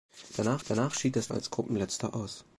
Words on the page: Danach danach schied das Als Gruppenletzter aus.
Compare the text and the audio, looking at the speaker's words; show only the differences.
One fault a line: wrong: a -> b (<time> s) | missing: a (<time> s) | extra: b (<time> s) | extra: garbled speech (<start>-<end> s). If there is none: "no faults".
no faults